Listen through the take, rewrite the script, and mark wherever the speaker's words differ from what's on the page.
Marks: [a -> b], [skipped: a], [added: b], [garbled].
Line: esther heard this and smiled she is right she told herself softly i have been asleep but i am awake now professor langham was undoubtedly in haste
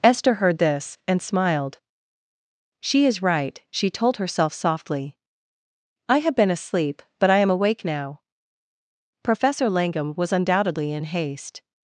esther heard this and smiled she is right she told herself softly i have been asleep but i am awake now professor langham was undoubtedly in haste